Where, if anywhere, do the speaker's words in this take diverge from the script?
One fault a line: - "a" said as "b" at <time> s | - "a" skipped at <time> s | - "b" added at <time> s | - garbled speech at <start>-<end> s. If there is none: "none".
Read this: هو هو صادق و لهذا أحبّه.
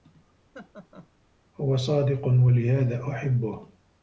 - "هو" skipped at 1.8 s